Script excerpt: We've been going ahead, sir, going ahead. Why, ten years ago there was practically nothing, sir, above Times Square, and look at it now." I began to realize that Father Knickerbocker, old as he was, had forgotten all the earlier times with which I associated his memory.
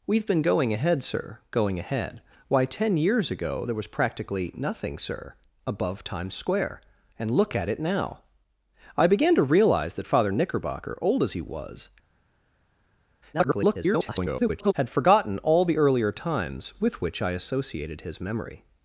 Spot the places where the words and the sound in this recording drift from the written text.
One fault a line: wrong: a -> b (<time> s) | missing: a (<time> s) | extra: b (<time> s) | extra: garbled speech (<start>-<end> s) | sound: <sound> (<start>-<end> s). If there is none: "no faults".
extra: garbled speech (13.3-14.7 s)